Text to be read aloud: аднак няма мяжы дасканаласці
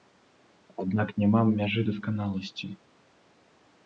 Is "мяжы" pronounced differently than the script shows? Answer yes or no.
no